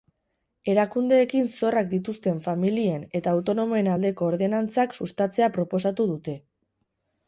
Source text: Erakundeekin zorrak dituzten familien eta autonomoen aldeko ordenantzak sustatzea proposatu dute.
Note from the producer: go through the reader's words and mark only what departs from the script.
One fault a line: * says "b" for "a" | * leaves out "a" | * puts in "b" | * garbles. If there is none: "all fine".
all fine